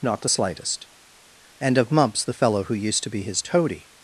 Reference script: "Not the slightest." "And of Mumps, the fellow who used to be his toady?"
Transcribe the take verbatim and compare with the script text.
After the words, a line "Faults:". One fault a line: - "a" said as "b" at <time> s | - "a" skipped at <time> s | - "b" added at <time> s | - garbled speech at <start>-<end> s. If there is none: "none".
"Not the slightest." "And of Mumps, the fellow who used to be his toady?"
Faults:
none